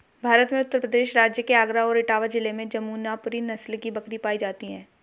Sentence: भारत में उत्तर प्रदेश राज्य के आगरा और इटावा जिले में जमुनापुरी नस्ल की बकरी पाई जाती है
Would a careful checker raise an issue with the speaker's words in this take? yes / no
no